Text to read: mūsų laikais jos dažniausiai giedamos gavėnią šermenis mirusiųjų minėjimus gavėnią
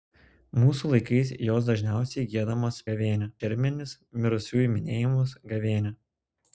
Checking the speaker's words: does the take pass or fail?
pass